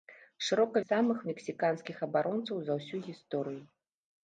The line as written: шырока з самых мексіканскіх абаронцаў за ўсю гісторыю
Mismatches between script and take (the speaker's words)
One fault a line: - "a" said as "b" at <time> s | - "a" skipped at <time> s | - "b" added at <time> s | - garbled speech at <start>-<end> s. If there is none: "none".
none